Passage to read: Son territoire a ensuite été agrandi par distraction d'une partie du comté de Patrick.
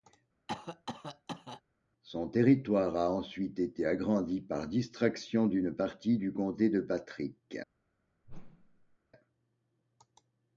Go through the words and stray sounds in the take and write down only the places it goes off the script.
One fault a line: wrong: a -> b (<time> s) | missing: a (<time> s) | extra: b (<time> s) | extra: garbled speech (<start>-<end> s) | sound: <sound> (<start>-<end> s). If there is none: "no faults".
sound: cough (0.5-1.6 s)
sound: whoosh (8.2-9.0 s)